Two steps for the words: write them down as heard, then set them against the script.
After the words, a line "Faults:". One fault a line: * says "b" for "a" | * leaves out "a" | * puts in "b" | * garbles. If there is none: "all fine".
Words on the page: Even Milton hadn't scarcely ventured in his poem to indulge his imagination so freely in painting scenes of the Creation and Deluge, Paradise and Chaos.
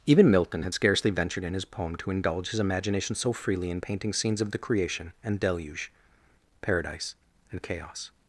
Even Milton had scarcely ventured in his poem to indulge his imagination so freely in painting scenes of the Creation and Deluge, Paradise and Chaos.
Faults:
* says "had" for "hadn't"